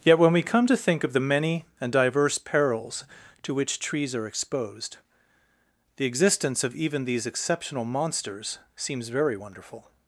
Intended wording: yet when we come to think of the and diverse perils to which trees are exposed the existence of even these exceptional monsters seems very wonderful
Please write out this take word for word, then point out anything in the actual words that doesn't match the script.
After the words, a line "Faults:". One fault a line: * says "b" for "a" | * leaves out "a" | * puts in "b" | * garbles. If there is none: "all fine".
yet when we come to think of the many and diverse perils to which trees are exposed the existence of even these exceptional monsters seems very wonderful
Faults:
* puts in "many"